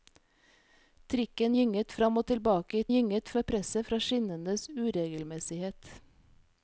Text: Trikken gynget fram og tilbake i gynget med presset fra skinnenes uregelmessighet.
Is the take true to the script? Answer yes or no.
yes